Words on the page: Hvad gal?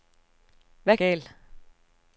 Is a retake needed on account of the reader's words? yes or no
no